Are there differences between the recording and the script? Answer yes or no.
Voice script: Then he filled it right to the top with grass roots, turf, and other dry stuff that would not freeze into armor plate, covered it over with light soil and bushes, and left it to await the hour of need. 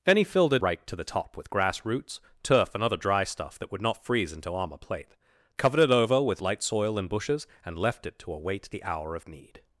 no